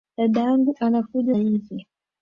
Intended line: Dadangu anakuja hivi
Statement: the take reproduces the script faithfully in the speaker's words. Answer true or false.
true